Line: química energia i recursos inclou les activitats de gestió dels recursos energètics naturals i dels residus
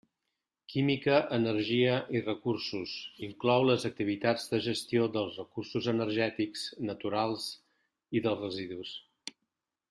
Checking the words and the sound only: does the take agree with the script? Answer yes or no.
yes